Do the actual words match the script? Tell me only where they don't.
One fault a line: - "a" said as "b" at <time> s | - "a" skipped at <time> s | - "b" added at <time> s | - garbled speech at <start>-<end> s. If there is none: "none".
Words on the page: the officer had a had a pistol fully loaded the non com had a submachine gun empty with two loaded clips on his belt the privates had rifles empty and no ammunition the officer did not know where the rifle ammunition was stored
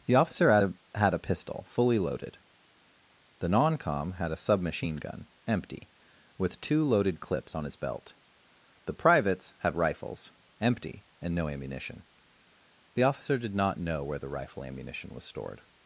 none